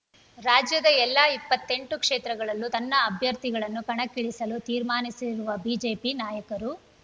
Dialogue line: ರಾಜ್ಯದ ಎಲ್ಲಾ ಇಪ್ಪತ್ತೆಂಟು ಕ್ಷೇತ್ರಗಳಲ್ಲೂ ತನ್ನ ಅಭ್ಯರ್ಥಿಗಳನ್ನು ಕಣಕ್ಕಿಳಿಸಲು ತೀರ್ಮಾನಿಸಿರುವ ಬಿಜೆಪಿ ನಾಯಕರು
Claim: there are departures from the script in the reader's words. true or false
false